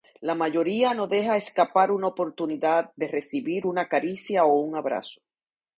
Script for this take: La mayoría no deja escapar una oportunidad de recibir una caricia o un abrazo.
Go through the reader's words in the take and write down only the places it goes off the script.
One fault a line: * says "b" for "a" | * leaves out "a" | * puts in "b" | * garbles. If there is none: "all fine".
all fine